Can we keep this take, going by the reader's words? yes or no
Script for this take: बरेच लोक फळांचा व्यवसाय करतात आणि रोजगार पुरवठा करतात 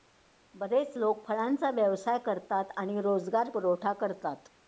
yes